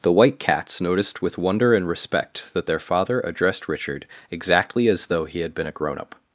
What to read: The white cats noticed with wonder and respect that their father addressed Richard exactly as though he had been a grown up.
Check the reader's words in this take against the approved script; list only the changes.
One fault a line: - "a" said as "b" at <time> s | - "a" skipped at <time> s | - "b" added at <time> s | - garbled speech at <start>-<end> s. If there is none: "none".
none